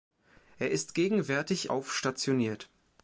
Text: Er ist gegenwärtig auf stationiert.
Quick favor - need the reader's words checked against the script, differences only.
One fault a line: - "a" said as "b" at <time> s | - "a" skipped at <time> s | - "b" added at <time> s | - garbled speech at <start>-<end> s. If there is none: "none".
none